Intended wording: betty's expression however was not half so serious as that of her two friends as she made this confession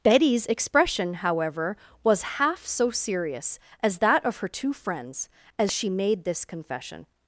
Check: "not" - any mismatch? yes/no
yes